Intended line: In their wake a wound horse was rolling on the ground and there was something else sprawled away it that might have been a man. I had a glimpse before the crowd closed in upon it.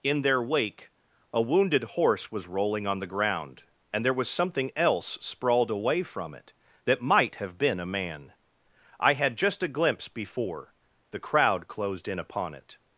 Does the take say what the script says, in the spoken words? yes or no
no